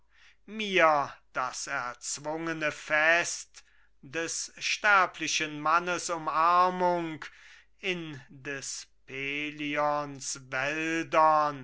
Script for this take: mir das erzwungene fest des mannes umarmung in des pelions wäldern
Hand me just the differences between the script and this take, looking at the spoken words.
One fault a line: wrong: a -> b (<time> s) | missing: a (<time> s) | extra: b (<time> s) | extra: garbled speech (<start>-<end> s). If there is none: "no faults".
extra: sterblichen (4.6 s)